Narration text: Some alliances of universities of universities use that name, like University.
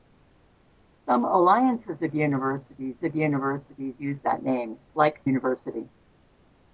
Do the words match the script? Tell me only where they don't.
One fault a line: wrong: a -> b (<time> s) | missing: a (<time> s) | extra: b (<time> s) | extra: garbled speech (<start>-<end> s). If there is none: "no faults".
no faults